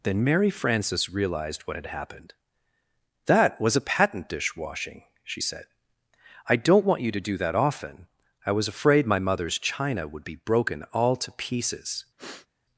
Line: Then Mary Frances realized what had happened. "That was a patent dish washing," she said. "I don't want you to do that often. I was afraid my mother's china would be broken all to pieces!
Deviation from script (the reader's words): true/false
false